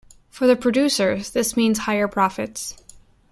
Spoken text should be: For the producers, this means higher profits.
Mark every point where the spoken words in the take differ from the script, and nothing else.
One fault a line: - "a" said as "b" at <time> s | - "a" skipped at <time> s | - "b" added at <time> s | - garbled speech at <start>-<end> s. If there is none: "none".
none